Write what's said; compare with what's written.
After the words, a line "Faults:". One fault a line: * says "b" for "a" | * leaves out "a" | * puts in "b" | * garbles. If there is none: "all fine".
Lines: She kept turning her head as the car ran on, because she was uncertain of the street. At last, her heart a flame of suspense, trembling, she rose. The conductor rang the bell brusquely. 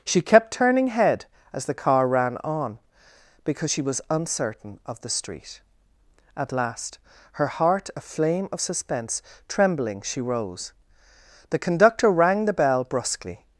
She kept turning head as the car ran on, because she was uncertain of the street. At last, her heart a flame of suspense, trembling, she rose. The conductor rang the bell brusquely.
Faults:
* leaves out "her"